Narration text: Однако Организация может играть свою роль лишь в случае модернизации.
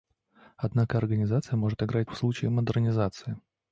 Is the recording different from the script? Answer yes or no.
yes